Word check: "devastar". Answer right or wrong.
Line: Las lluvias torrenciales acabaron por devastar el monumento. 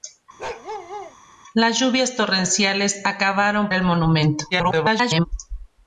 wrong